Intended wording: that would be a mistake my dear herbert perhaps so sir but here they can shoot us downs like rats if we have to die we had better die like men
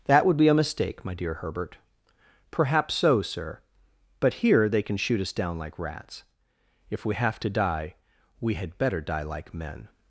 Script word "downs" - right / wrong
wrong